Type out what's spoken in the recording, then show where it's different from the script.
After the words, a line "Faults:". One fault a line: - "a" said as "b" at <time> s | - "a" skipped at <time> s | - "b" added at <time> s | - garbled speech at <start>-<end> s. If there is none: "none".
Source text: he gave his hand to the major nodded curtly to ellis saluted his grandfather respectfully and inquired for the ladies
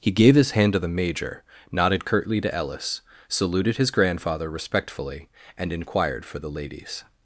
he gave his hand to the major nodded curtly to ellis saluted his grandfather respectfully and inquired for the ladies
Faults:
none